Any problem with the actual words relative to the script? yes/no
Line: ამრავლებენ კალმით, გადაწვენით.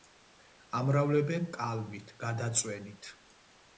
no